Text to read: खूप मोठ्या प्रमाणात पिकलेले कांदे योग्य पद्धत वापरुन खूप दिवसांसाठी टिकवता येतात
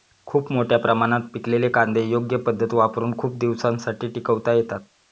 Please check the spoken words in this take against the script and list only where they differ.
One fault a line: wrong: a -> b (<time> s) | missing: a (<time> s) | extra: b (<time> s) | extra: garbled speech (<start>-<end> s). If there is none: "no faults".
no faults